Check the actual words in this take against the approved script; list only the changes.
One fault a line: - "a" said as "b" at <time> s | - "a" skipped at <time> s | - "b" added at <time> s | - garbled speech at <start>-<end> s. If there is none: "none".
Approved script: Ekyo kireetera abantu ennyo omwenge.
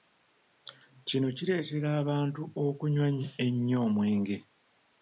- "Ekyo" said as "Kino" at 1.1 s
- "okunywa" added at 2.6 s